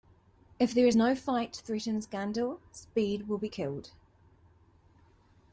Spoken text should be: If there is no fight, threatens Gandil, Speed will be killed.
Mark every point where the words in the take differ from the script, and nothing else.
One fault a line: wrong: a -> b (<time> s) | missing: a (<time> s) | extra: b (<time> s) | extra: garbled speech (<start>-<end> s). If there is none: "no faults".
no faults